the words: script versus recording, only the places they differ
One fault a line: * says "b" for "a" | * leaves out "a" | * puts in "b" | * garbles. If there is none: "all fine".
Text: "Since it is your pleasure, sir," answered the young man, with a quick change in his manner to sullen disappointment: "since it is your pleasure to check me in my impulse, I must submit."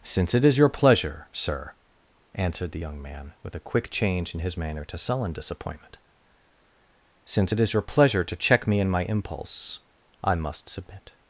all fine